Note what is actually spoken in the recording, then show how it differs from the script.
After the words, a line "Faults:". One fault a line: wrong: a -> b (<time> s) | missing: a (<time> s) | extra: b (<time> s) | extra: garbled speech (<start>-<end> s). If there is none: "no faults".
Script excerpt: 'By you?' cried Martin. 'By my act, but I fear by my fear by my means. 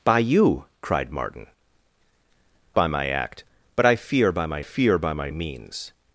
'By you?' cried Martin. 'By my act, but I fear by my fear by my means.
Faults:
no faults